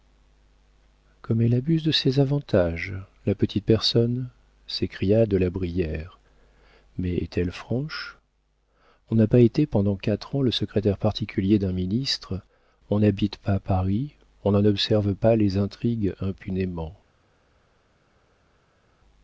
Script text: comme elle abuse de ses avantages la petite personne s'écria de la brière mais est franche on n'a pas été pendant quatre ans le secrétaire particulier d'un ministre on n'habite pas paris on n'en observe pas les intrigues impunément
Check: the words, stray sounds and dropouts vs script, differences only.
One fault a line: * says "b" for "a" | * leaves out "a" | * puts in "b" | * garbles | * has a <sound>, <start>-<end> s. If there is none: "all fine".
* puts in "elle"